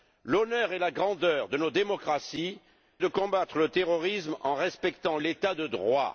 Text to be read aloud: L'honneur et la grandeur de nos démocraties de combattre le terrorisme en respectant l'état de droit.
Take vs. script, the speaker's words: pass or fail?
pass